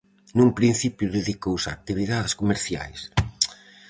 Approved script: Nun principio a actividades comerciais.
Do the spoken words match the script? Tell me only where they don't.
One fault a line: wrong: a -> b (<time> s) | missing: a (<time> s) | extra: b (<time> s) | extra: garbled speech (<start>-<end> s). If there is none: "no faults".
extra: dedicouse (1.2 s)